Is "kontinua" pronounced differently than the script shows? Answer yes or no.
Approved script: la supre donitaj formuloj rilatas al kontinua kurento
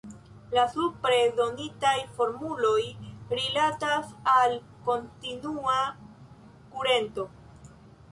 no